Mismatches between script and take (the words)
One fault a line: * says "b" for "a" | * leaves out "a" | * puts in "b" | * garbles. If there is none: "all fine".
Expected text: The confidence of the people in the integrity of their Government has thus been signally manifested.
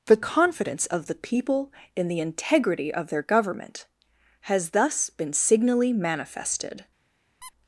all fine